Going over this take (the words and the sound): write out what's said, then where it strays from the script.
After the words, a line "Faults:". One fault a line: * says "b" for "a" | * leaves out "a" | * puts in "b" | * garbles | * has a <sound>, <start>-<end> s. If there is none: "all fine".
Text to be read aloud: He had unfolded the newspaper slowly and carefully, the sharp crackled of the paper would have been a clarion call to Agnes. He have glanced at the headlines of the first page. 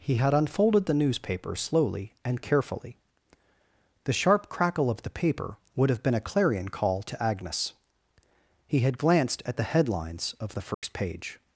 He had unfolded the newspaper slowly and carefully, the sharp crackle of the paper would have been a clarion call to Agnes. He had glanced at the headlines of the first page.
Faults:
* says "crackle" for "crackled"
* says "had" for "have"
* has a dropout, 10.7-10.8 s